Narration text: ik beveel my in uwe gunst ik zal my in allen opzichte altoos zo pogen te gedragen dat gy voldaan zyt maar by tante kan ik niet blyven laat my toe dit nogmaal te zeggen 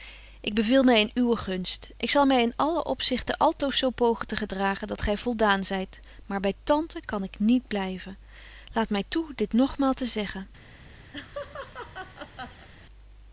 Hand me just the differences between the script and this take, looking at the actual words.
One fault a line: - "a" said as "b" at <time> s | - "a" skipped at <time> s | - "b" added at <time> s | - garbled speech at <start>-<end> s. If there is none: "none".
none